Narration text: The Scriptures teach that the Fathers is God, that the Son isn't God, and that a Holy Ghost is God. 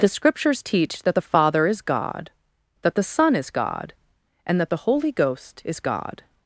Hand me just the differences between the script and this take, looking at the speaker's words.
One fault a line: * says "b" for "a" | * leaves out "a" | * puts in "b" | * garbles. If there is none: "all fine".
* says "Father" for "Fathers"
* says "is" for "isn't"
* says "the" for "a"